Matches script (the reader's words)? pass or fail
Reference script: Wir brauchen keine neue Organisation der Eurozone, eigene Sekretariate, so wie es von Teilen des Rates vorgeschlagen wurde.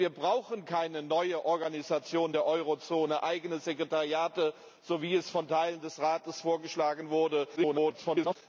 fail